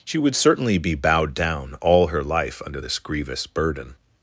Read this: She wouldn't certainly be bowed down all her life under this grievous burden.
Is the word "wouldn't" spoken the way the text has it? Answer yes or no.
no